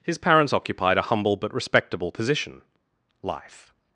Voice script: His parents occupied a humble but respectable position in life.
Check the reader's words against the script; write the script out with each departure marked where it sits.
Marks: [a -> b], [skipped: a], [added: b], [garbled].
His parents occupied a humble but respectable position [skipped: in] life.